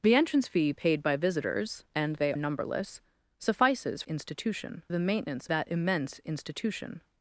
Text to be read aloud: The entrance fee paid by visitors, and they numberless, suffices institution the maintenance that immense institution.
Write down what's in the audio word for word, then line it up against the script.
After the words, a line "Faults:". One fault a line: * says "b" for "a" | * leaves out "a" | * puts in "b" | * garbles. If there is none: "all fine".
The entrance fee paid by visitors, and they numberless, suffices institution the maintenance that immense institution.
Faults:
all fine